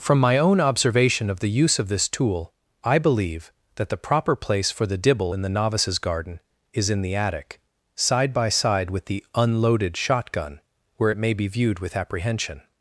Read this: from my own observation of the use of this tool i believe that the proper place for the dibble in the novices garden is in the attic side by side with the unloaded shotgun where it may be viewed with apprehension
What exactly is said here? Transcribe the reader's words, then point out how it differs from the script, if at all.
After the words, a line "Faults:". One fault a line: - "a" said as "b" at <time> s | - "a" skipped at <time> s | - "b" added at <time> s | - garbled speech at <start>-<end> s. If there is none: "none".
from my own observation of the use of this tool i believe that the proper place for the dibble in the novices garden is in the attic side by side with the unloaded shotgun where it may be viewed with apprehension
Faults:
none